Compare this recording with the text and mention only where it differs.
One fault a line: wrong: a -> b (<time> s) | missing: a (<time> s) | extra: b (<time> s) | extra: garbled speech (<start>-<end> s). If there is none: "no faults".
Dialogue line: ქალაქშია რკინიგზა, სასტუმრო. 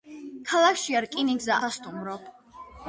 no faults